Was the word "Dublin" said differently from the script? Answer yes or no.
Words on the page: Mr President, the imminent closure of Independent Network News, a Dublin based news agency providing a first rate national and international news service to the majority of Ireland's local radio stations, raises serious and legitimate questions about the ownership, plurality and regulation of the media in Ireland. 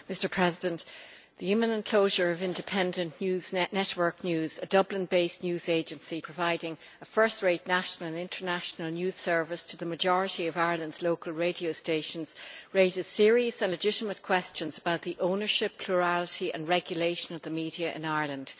no